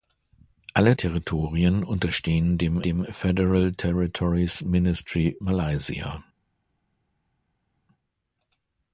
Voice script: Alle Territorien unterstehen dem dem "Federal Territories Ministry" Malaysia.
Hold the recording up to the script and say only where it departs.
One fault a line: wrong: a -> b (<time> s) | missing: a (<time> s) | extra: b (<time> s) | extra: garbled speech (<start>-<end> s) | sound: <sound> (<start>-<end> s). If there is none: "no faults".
no faults